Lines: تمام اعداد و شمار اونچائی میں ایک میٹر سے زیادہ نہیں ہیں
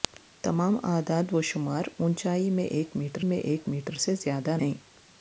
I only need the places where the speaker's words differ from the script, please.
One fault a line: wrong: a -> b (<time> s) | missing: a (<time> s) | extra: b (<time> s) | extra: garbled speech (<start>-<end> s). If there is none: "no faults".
extra: میں ایک میٹر (3.2 s)
missing: نہیں (4.6 s)